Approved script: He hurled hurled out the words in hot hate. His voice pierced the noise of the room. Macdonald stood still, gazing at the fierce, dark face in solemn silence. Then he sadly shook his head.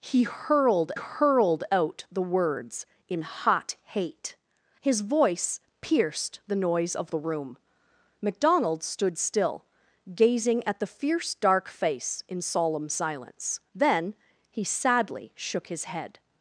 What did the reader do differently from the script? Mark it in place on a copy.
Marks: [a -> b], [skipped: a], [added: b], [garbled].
He hurled hurled out the words in hot hate. His voice pierced the noise of the room. Macdonald stood still, gazing at the fierce, dark face in solemn silence. Then he sadly shook his head.